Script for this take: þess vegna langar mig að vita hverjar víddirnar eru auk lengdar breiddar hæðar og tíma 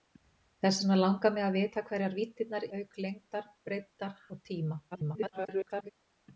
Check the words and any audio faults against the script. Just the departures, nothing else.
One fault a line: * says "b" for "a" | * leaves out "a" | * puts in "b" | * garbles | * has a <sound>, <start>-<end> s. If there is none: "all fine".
* leaves out "eru"
* leaves out "hæðar"
* garbles